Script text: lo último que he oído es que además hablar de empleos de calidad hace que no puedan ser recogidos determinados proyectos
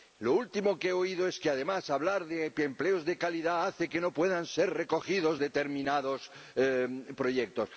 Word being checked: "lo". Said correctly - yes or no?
yes